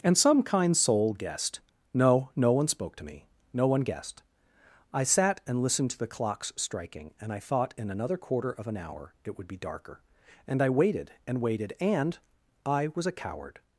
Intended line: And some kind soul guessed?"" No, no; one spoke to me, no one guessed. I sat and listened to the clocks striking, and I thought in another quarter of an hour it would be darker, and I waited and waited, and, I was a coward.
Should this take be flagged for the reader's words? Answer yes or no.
no